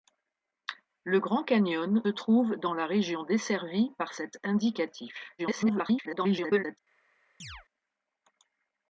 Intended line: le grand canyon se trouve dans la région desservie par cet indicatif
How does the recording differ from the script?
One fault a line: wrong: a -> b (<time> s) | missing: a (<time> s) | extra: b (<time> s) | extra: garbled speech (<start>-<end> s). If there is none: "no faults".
missing: se (2.0 s)
extra: garbled speech (5.4-6.8 s)